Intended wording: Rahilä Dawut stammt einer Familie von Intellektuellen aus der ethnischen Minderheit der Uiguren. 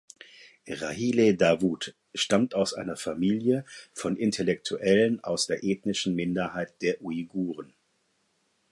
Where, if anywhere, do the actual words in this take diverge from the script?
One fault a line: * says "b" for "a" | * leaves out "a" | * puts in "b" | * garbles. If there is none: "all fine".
* puts in "aus"